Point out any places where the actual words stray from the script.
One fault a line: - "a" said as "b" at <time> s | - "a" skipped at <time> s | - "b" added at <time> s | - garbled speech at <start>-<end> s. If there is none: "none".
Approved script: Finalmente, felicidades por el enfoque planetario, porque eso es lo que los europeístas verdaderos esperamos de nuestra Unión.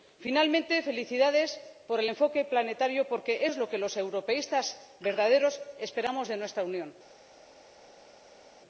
- "eso" skipped at 3.4 s